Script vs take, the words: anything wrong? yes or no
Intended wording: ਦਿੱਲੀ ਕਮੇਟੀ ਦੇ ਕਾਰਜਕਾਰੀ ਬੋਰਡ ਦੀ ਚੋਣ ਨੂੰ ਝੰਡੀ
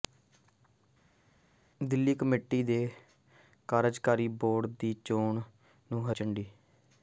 no